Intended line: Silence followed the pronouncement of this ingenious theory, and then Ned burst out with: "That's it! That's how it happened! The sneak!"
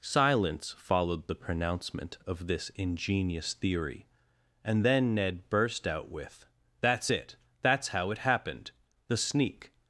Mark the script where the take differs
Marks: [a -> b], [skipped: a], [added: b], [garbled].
Silence followed the pronouncement of this ingenious theory, and then Ned burst out with: "That's it! That's how it happened! The sneak!"